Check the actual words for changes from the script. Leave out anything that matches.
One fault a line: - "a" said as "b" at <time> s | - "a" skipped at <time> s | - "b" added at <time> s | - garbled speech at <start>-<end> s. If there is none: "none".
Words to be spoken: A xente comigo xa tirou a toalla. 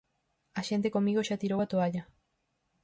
none